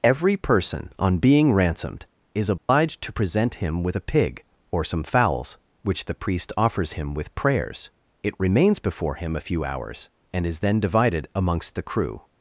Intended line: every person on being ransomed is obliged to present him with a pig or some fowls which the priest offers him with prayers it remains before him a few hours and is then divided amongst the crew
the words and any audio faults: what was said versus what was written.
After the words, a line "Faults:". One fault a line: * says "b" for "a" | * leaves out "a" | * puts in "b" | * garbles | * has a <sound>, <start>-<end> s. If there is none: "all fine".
every person on being ransomed is obliged to present him with a pig or some fowls which the priest offers him with prayers it remains before him a few hours and is then divided amongst the crew
Faults:
* has a dropout, 2.6-2.7 s